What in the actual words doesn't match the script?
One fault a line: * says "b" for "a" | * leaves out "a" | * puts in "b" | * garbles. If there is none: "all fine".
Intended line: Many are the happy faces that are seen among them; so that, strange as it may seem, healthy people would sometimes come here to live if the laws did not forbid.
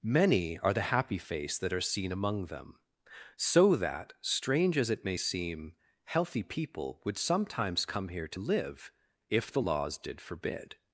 * says "face" for "faces"
* leaves out "not"